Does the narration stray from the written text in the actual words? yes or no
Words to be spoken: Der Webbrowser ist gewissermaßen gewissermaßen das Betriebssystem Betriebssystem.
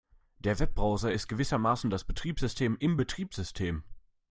yes